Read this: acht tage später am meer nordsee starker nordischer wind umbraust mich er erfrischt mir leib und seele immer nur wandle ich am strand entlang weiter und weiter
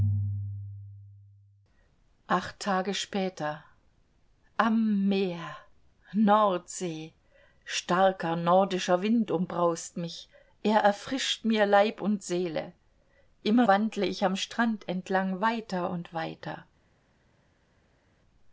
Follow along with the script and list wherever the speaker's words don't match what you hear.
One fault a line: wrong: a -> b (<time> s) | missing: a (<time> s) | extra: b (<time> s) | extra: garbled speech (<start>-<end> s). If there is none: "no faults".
missing: nur (13.7 s)